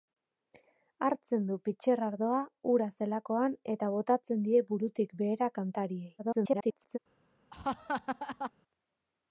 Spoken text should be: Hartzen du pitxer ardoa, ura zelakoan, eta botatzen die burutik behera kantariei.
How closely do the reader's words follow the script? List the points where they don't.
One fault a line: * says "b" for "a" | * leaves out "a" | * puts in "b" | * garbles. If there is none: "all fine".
* garbles